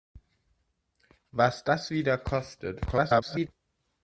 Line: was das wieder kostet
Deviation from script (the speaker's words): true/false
true